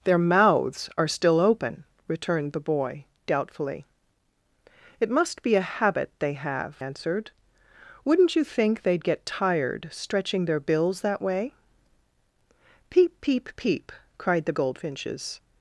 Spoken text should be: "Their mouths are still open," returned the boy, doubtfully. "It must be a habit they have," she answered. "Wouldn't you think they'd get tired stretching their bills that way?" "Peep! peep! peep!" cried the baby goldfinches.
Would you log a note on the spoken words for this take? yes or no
yes